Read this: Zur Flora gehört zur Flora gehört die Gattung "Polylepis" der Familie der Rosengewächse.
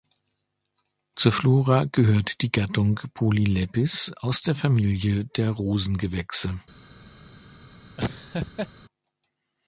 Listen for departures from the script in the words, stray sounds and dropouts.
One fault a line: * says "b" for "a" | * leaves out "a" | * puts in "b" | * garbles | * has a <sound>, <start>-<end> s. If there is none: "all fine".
* leaves out "zur Flora gehört"
* puts in "aus"
* has a laugh, 8.0-8.7 s